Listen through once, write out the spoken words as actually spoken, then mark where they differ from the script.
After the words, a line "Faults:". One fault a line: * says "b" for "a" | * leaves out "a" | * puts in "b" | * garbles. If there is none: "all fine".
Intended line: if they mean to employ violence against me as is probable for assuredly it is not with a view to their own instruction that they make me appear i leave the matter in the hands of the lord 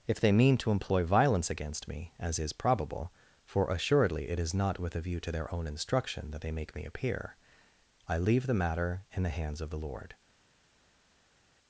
if they mean to employ violence against me as is probable for assuredly it is not with a view to their own instruction that they make me appear i leave the matter in the hands of the lord
Faults:
all fine